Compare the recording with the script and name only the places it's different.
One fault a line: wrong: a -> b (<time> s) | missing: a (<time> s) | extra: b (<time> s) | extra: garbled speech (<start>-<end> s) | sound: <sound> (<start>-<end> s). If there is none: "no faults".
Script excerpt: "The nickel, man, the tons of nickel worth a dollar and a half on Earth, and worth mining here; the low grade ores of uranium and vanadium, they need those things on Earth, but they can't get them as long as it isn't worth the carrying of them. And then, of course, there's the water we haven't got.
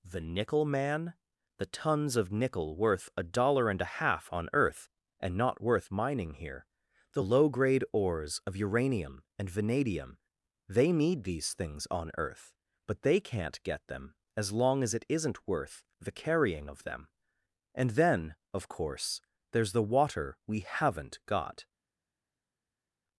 extra: not (5.4 s)
wrong: those -> these (11.2 s)